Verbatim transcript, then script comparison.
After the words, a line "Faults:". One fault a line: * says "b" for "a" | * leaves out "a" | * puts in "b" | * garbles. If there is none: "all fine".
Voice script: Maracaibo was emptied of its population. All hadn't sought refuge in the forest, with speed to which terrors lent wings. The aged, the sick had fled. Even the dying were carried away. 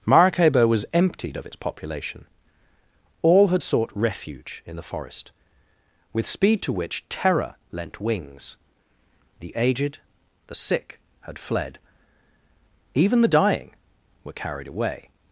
Maracaibo was emptied of its population. All had sought refuge in the forest, with speed to which terror lent wings. The aged, the sick had fled. Even the dying were carried away.
Faults:
* says "had" for "hadn't"
* says "terror" for "terrors"